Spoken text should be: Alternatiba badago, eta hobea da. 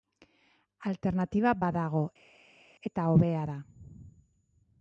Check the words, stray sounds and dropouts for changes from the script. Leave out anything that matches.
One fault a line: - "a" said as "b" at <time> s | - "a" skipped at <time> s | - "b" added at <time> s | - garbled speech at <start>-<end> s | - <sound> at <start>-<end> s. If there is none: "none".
none